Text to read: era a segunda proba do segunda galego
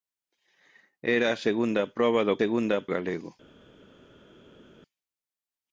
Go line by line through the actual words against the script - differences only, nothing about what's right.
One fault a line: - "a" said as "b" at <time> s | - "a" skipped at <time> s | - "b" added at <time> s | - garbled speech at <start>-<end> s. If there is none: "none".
none